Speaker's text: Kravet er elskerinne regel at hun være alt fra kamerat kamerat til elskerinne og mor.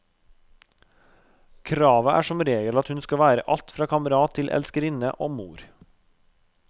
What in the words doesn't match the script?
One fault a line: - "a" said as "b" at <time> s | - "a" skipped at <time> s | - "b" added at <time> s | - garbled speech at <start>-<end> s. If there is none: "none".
- "elskerinne" said as "som" at 2.3 s
- "skal" added at 3.0 s
- "kamerat" skipped at 4.4 s